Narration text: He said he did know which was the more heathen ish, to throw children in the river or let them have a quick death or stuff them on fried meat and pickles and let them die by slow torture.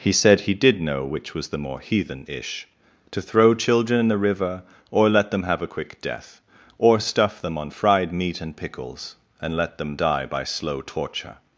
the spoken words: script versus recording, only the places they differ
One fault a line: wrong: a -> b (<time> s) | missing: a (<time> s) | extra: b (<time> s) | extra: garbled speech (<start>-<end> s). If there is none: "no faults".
no faults